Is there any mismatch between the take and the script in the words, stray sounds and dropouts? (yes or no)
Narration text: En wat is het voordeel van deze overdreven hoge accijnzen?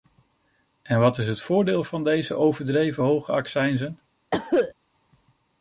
yes